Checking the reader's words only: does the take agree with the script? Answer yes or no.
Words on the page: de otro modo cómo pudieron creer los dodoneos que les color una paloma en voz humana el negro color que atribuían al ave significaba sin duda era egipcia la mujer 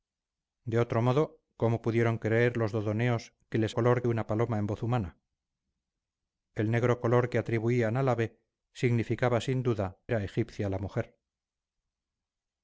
yes